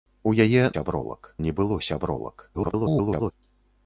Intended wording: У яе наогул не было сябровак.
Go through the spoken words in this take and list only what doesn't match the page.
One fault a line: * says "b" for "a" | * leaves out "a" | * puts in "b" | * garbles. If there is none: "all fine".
* says "сябровак" for "наогул"
* garbles